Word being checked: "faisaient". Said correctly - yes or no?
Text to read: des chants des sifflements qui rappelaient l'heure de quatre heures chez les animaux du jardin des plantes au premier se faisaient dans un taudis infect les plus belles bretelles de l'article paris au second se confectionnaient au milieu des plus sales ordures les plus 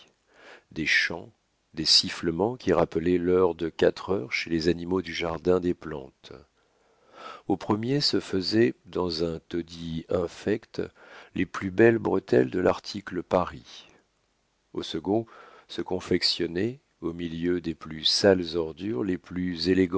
yes